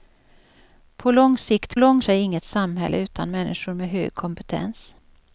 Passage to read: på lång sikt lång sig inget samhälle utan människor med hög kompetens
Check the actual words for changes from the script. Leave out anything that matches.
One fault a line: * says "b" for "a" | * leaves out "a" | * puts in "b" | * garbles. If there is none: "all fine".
all fine